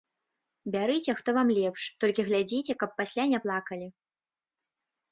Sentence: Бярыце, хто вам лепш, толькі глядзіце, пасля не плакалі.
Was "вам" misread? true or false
false